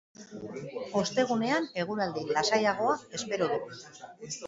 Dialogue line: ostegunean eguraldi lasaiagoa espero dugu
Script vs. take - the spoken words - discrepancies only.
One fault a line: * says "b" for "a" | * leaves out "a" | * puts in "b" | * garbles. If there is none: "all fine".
all fine